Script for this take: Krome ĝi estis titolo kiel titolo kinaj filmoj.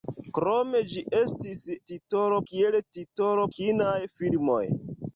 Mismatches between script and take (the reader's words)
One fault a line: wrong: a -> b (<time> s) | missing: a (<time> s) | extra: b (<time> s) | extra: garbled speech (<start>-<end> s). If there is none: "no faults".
no faults